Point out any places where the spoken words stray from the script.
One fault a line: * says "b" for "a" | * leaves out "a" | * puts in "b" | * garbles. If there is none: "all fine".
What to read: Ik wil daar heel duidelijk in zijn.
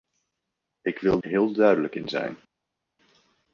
* leaves out "daar"